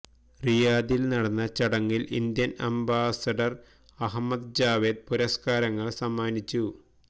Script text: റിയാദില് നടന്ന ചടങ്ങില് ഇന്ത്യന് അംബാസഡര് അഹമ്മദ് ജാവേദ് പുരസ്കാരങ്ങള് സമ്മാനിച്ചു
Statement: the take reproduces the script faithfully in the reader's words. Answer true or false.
true